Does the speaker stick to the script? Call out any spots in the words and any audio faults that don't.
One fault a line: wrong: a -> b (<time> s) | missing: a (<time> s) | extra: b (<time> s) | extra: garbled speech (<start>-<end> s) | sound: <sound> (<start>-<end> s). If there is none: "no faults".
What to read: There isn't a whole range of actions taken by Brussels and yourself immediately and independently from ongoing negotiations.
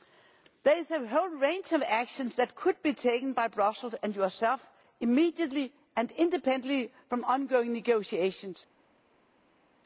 wrong: isn't -> is (0.8 s)
extra: that could be (2.4 s)